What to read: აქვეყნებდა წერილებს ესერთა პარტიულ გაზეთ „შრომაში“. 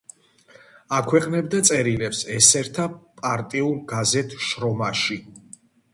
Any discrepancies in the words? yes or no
no